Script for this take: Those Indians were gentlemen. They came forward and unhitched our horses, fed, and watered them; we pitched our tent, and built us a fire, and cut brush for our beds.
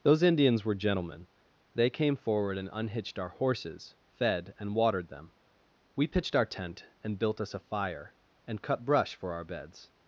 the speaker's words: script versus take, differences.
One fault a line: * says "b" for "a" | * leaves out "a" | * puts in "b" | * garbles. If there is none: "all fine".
all fine